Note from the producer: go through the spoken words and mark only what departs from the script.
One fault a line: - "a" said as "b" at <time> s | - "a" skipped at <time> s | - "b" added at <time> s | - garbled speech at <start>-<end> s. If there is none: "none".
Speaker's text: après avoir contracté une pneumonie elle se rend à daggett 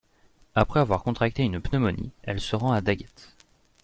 none